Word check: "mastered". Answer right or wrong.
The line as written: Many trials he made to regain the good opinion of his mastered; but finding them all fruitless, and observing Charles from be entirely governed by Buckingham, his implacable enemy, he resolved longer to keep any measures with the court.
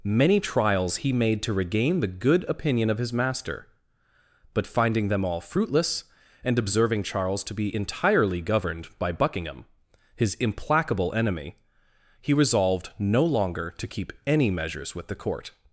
wrong